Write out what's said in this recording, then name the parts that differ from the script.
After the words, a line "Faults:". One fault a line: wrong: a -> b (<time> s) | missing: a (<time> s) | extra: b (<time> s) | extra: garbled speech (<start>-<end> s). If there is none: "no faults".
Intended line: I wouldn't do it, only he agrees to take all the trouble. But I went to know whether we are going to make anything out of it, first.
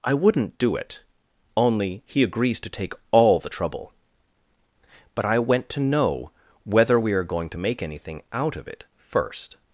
I wouldn't do it, only he agrees to take all the trouble. But I went to know whether we are going to make anything out of it, first.
Faults:
no faults